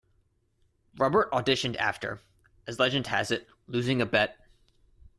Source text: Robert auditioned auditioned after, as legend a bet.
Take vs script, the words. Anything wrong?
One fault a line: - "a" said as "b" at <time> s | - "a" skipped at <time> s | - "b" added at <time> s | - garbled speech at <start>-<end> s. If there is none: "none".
- "auditioned" skipped at 1.8 s
- "has it losing" added at 3.1 s